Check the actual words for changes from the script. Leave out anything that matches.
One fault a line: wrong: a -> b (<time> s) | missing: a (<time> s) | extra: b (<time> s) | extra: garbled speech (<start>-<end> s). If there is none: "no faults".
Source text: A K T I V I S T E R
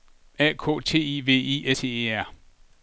missing: S (1.7 s)